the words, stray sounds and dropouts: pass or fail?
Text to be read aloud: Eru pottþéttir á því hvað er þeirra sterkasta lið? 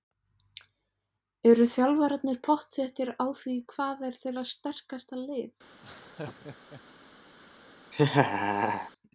fail